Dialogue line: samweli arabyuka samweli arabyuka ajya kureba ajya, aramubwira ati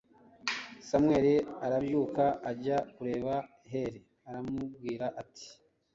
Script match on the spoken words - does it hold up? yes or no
no